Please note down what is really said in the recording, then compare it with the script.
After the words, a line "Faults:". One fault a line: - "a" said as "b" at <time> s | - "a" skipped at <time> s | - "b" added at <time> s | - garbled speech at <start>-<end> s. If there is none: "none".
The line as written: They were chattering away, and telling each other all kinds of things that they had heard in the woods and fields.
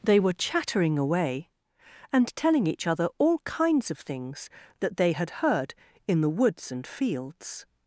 They were chattering away, and telling each other all kinds of things that they had heard in the woods and fields.
Faults:
none